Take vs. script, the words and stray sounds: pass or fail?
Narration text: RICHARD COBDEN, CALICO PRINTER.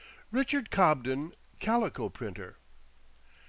pass